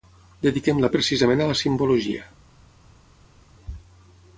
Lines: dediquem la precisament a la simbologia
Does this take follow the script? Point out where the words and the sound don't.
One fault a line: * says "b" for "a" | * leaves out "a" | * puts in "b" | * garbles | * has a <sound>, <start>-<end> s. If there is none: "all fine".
all fine